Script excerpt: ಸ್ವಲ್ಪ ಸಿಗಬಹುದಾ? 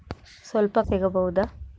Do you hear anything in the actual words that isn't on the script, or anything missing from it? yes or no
no